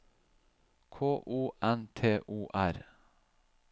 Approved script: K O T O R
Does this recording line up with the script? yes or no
no